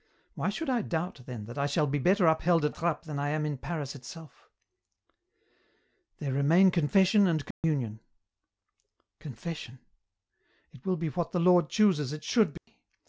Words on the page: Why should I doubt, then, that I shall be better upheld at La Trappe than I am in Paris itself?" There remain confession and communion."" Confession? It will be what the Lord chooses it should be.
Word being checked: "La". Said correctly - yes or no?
no